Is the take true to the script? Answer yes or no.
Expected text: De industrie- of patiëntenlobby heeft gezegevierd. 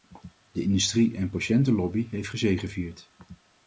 no